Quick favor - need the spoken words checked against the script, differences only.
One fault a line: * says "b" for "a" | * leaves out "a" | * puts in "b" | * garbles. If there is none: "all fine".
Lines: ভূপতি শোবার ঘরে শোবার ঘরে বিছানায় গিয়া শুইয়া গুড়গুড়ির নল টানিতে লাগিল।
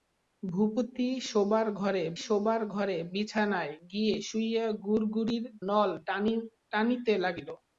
all fine